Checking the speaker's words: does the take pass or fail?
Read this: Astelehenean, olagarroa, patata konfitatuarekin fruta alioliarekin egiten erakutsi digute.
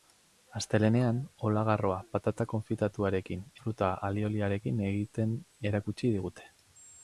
pass